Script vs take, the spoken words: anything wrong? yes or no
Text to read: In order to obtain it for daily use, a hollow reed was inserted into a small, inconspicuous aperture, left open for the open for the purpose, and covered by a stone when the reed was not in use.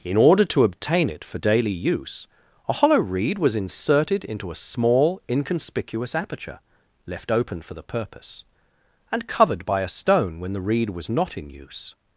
yes